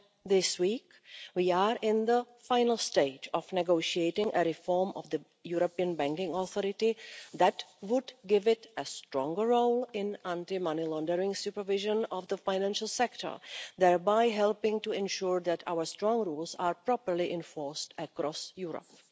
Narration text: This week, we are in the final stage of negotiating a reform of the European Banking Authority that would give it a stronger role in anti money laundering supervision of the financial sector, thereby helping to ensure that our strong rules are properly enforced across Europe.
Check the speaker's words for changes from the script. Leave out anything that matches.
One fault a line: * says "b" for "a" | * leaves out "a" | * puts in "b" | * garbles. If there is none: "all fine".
all fine